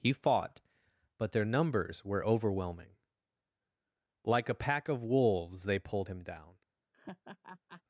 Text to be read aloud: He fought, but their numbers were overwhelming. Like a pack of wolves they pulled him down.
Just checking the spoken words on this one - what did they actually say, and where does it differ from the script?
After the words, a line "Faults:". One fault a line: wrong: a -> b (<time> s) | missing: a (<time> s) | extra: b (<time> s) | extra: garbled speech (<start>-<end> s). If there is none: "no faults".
He fought, but their numbers were overwhelming. Like a pack of wolves they pulled him down.
Faults:
no faults